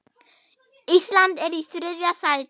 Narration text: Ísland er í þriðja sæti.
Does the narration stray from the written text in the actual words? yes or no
no